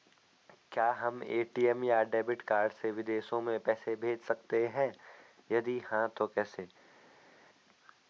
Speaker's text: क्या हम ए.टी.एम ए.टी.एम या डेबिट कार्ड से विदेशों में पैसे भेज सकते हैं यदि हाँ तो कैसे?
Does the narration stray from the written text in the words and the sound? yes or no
yes